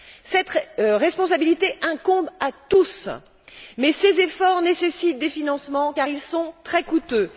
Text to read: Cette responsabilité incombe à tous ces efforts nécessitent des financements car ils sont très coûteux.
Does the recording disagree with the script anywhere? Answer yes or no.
yes